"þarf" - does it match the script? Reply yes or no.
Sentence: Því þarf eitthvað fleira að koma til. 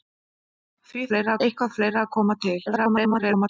no